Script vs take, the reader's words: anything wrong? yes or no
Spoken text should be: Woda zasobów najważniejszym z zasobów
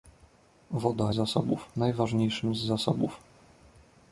no